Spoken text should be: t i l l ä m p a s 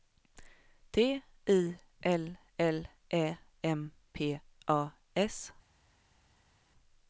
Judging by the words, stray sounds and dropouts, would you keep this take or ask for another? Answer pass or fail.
pass